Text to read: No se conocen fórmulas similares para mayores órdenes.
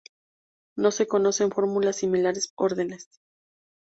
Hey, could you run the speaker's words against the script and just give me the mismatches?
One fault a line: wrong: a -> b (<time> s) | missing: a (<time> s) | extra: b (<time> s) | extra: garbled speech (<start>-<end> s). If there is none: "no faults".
missing: para mayores (2.5 s)